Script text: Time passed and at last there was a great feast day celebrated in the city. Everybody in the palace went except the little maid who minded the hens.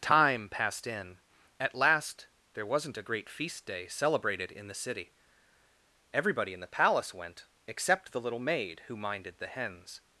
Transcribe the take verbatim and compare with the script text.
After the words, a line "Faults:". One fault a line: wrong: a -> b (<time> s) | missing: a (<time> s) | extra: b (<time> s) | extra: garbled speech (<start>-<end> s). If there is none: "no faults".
Time passed in at last there wasn't a great feast day celebrated in the city. Everybody in the palace went except the little maid who minded the hens.
Faults:
wrong: and -> in (0.9 s)
wrong: was -> wasn't (2.6 s)